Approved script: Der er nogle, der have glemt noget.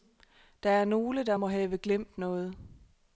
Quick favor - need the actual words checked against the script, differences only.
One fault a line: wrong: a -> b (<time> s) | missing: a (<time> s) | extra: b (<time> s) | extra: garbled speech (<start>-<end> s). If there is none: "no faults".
extra: må (1.3 s)